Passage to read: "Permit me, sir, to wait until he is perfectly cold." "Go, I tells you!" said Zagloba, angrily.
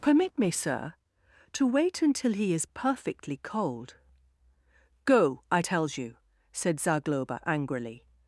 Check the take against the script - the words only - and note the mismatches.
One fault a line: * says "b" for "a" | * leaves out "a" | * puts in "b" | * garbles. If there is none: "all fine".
all fine